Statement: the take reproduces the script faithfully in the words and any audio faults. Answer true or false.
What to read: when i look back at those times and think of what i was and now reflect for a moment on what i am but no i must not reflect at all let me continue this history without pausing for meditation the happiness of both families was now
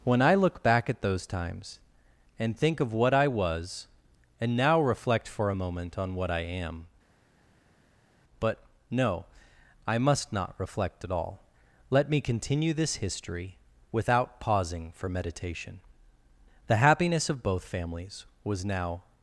true